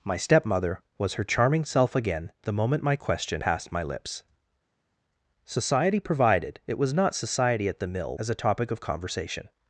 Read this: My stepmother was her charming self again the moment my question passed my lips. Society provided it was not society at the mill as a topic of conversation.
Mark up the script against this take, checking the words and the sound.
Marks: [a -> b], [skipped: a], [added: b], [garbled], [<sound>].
My stepmother was her charming self again the moment my question passed my lips. Society provided it was not society at the mill as a topic of conversation.